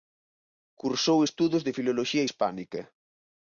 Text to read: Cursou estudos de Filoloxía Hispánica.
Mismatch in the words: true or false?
false